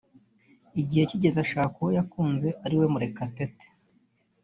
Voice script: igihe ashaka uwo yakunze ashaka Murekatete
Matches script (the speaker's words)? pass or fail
fail